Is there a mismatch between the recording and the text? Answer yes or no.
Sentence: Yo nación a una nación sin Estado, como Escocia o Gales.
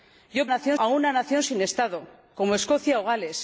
no